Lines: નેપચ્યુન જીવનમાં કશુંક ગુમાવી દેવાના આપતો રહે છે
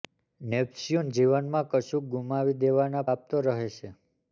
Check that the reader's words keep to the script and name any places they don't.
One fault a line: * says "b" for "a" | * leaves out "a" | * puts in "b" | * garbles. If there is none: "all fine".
all fine